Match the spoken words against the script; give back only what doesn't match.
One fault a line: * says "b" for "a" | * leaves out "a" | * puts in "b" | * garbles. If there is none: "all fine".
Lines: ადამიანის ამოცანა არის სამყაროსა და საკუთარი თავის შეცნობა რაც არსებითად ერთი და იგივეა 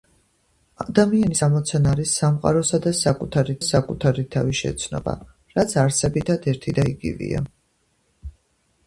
* puts in "საკუთარი"